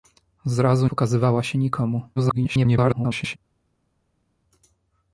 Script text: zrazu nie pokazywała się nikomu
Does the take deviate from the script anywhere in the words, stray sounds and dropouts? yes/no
yes